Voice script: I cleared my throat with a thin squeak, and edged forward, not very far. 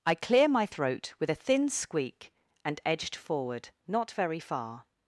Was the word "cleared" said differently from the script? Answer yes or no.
yes